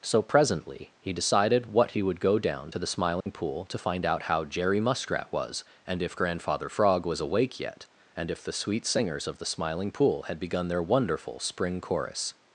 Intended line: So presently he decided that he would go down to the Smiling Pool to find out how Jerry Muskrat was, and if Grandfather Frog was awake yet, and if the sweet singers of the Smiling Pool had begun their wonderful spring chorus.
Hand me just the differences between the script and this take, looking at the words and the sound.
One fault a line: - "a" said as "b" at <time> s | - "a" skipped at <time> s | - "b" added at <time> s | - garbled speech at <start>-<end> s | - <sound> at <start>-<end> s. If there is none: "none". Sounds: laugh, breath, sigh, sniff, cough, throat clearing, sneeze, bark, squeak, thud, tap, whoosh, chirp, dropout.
- "that" said as "what" at 1.7 s
- dropout at 3.2-3.3 s